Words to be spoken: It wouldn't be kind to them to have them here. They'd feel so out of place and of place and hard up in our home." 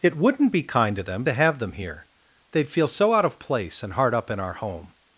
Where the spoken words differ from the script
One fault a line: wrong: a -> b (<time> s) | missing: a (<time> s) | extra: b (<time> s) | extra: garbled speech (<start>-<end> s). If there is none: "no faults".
missing: of place and (3.9 s)